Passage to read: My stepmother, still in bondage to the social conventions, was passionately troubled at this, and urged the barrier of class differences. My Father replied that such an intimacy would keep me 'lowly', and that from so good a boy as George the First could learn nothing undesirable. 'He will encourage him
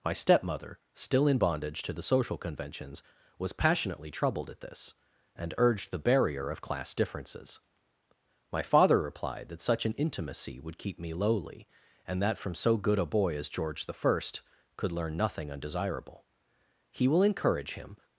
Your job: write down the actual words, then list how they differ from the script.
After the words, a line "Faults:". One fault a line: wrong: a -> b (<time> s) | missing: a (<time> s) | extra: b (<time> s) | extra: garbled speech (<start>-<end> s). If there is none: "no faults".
My stepmother, still in bondage to the social conventions, was passionately troubled at this, and urged the barrier of class differences. My Father replied that such an intimacy would keep me 'lowly', and that from so good a boy as George the First could learn nothing undesirable. 'He will encourage him
Faults:
no faults